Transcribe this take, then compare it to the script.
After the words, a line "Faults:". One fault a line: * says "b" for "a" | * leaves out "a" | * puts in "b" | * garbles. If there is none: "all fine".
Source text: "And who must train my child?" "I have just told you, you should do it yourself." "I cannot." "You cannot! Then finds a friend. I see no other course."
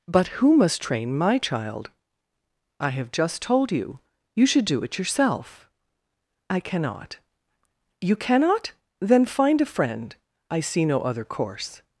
"But who must train my child?" "I have just told you, you should do it yourself." "I cannot." "You cannot! Then find a friend. I see no other course."
Faults:
* says "But" for "And"
* says "find" for "finds"